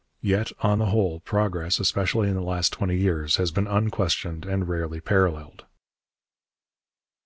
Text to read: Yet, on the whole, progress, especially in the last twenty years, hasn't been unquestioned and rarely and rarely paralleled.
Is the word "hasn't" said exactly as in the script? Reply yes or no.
no